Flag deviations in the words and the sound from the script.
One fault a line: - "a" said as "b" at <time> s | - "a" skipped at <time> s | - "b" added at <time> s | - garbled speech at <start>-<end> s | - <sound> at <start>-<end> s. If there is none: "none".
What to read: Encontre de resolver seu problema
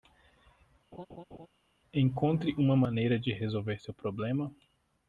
- laugh at 0.9-1.5 s
- "uma maneira" added at 2.6 s